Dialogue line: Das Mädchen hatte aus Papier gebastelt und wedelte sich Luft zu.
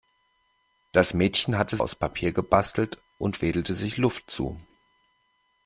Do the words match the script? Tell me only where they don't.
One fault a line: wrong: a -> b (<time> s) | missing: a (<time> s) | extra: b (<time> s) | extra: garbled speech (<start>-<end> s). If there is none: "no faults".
no faults